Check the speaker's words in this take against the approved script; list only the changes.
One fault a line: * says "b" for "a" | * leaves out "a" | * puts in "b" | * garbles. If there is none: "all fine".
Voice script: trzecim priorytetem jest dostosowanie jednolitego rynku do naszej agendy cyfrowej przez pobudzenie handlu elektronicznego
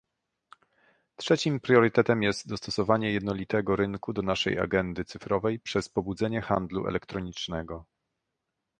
all fine